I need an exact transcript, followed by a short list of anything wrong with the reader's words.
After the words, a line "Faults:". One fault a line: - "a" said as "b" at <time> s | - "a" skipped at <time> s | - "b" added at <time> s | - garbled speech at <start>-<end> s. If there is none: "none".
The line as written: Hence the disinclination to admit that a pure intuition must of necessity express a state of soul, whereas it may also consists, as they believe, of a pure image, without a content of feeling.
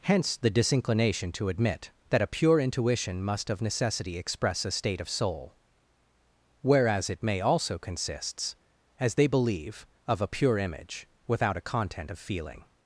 Hence the disinclination to admit that a pure intuition must of necessity express a state of soul, whereas it may also consists, as they believe, of a pure image, without a content of feeling.
Faults:
none